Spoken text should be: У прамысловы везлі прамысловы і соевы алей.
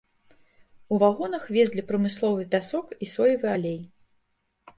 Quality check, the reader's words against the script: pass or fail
fail